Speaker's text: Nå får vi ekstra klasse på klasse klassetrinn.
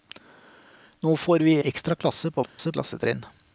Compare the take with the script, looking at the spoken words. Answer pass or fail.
pass